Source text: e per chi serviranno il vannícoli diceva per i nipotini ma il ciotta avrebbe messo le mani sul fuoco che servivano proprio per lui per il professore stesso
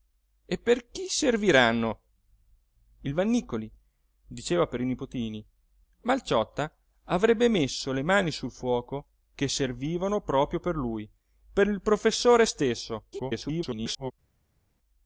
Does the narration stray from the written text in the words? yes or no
yes